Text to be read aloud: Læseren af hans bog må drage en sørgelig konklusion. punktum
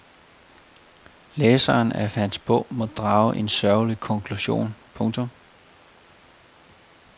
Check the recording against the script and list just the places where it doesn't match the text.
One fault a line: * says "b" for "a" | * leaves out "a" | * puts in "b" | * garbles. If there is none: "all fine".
all fine